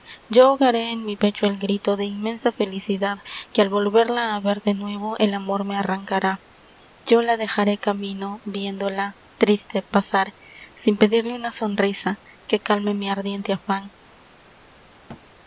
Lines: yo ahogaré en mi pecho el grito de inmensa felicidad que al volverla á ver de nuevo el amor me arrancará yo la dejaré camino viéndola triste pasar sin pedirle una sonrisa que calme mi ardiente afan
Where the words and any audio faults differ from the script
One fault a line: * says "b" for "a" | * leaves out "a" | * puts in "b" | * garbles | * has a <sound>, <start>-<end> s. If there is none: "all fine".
* has a thud, 15.1-15.3 s